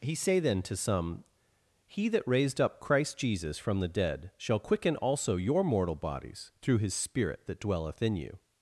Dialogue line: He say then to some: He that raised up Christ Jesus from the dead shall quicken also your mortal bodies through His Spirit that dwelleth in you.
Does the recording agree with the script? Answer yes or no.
yes